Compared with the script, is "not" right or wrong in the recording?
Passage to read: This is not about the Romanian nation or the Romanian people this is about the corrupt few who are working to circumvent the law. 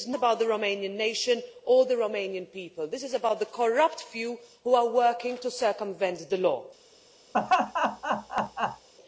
wrong